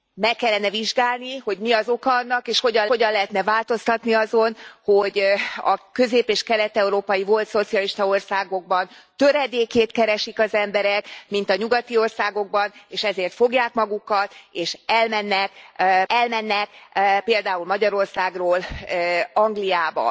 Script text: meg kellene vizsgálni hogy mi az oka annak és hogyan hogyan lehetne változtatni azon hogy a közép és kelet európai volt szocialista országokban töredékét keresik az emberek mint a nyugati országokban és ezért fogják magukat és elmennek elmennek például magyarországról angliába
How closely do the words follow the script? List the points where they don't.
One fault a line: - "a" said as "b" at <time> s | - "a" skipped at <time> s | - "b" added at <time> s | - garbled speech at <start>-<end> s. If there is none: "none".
none